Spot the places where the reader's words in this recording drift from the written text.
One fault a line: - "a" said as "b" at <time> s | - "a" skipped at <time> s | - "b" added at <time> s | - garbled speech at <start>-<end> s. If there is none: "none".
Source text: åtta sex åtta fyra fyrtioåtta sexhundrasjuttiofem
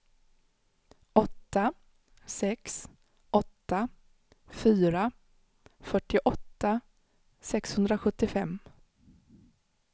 none